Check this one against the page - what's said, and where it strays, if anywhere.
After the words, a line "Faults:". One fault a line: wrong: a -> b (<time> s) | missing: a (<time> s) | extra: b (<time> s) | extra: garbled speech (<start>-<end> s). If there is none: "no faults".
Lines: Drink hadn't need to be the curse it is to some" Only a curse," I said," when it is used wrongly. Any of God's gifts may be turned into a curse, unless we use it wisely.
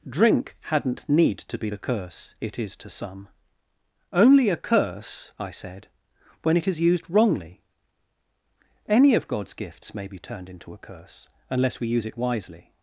Drink hadn't need to be the curse it is to some" Only a curse," I said," when it is used wrongly. Any of God's gifts may be turned into a curse, unless we use it wisely.
Faults:
no faults